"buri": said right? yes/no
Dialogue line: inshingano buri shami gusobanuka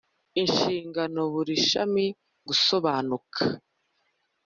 yes